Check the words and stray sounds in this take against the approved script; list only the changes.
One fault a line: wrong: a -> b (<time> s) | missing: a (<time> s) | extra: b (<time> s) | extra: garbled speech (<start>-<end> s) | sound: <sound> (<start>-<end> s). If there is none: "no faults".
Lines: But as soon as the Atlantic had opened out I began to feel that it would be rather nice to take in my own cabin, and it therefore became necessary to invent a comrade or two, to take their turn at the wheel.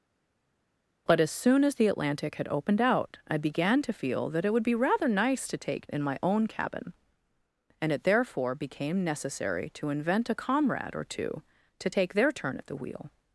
no faults